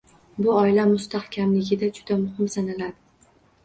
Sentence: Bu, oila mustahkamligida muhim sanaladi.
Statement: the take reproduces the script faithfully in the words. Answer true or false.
false